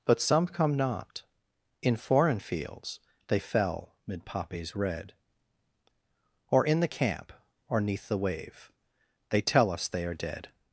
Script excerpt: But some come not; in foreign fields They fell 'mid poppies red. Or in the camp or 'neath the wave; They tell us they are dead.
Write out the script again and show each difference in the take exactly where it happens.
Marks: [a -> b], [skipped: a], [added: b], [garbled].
But some come not; in foreign fields They fell 'mid poppies red. Or in the camp or 'neath the wave; They tell us they are dead.